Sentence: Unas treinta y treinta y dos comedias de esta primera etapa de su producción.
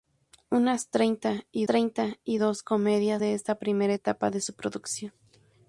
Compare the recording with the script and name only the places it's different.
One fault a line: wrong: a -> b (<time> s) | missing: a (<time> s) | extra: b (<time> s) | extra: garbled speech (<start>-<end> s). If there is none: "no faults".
no faults